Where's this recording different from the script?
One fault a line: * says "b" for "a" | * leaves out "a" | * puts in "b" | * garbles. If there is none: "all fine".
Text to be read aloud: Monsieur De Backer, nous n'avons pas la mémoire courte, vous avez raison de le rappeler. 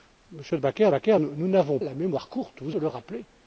* puts in "Backer"
* leaves out "pas"
* leaves out "avez raison"